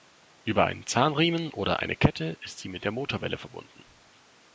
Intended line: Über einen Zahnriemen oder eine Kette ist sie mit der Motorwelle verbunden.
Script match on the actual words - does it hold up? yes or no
yes